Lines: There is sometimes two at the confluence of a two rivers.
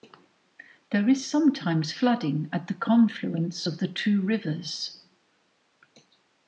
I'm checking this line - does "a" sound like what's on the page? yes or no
no